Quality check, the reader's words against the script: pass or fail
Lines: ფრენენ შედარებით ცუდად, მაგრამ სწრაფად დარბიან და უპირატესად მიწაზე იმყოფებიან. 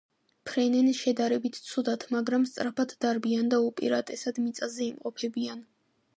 pass